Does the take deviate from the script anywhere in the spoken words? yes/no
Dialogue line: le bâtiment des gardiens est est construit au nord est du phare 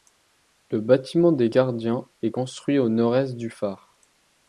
yes